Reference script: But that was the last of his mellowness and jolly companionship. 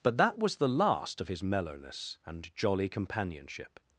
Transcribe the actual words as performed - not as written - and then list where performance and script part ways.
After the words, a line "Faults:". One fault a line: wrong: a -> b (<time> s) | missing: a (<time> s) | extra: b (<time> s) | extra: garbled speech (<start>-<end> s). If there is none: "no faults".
But that was the last of his mellowness and jolly companionship.
Faults:
no faults